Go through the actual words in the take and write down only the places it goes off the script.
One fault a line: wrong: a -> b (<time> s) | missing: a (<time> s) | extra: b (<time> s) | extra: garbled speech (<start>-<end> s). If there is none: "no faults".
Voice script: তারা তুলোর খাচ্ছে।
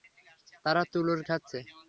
no faults